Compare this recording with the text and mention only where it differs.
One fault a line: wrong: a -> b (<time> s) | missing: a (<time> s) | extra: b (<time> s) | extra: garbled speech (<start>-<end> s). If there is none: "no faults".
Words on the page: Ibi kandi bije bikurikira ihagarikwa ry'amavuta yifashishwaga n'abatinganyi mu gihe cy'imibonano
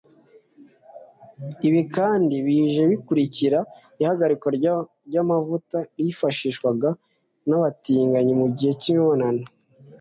no faults